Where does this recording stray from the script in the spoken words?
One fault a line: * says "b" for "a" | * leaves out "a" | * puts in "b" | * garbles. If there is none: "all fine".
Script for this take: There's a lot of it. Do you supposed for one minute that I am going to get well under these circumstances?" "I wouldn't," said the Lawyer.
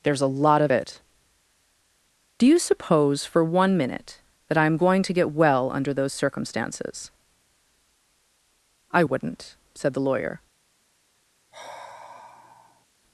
* says "suppose" for "supposed"
* says "those" for "these"